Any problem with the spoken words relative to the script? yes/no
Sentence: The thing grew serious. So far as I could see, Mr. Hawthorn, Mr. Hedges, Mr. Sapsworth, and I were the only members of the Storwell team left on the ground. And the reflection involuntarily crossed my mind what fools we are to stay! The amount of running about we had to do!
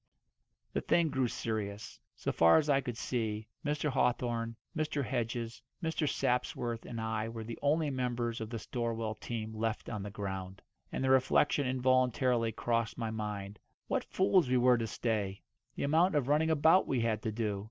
yes